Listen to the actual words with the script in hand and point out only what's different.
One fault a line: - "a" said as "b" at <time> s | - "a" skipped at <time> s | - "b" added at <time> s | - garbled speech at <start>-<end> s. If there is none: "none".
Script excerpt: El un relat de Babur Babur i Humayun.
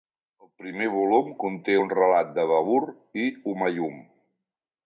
- "primer volum conté" added at 0.6 s
- "Babur" skipped at 2.8 s